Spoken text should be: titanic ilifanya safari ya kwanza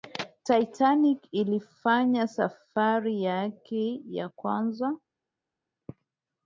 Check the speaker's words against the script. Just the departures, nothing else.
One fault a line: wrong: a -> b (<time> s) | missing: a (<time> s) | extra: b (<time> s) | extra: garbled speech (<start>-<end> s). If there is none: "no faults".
extra: yake (3.2 s)